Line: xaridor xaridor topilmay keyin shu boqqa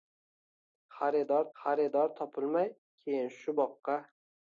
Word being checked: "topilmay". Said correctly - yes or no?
yes